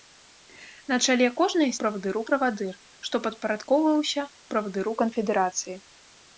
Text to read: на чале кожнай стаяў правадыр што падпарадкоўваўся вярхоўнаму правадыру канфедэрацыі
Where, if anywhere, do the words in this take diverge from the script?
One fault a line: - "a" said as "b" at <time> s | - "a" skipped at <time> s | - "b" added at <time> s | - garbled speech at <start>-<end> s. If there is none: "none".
- "стаяў" said as "правадыру" at 1.8 s
- "вярхоўнаму" skipped at 4.2 s